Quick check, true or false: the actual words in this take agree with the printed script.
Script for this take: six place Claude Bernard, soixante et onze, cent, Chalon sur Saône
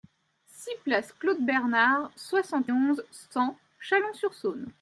false